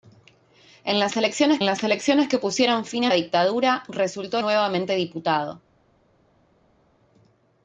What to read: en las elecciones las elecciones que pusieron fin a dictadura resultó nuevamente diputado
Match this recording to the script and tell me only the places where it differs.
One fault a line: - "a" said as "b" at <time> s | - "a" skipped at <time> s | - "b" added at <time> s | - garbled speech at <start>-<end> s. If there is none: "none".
none